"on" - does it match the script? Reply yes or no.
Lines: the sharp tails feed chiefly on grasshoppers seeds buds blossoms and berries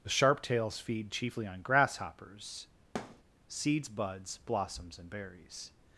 yes